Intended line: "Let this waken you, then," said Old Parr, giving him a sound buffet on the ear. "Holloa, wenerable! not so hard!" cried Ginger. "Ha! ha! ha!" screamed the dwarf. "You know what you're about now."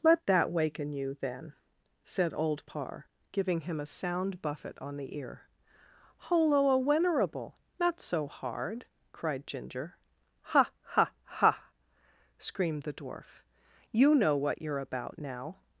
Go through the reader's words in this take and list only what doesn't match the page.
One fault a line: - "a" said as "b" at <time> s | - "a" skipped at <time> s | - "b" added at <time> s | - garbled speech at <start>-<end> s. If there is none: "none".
- "this" said as "that" at 0.2 s